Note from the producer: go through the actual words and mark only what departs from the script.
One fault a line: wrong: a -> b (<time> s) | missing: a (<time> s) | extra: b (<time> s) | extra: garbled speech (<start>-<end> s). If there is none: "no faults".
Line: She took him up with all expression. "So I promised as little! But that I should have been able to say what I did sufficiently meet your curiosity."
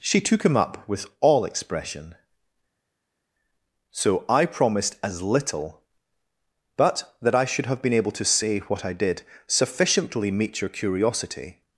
no faults